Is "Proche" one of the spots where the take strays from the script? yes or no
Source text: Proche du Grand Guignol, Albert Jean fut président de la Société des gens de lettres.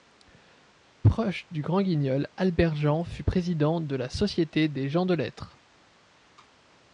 no